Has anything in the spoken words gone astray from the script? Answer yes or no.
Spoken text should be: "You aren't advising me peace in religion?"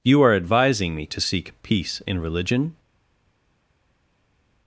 yes